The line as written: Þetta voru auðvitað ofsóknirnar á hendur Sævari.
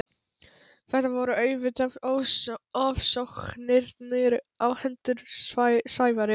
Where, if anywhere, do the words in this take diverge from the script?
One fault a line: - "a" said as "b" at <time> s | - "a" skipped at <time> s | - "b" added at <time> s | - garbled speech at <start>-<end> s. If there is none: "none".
none